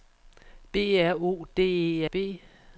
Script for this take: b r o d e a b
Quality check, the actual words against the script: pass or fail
pass